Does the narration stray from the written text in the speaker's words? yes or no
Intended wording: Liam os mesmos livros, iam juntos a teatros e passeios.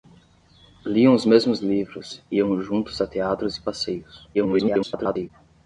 yes